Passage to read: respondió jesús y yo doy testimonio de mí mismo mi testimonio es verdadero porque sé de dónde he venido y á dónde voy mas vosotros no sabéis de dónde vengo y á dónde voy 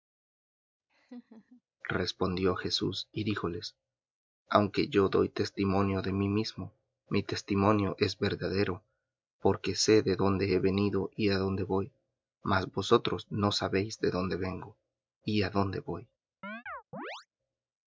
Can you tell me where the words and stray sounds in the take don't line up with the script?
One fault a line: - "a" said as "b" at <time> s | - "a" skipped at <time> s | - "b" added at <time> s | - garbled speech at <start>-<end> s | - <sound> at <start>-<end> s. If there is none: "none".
- laugh at 0.9-1.6 s
- "díjoles aunque" added at 3.2 s
- chirp at 16.4-17.3 s